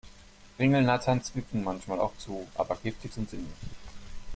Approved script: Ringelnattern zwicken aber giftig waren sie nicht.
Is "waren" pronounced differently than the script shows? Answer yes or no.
yes